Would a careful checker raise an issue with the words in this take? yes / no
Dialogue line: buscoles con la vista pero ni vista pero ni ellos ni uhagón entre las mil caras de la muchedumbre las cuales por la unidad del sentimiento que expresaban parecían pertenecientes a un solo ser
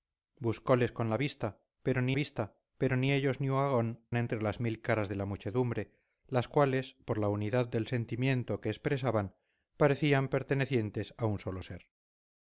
no